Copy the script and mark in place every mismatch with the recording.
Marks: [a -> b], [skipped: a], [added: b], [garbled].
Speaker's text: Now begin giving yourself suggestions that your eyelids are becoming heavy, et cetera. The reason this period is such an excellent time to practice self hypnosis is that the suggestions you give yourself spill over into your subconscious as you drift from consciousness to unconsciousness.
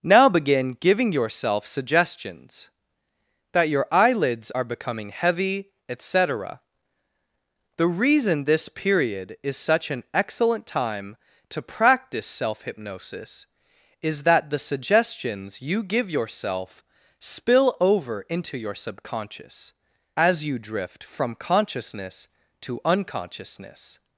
Now begin giving yourself suggestions that your eyelids are becoming heavy, et cetera. The reason this period is such an excellent time to practice self hypnosis is that the suggestions you give yourself spill over into your subconscious as you drift from consciousness to unconsciousness.